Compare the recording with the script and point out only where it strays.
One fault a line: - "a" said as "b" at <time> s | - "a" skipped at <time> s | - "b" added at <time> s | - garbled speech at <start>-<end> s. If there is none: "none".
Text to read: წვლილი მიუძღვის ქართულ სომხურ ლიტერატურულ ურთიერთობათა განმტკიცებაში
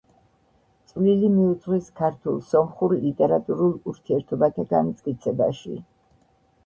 none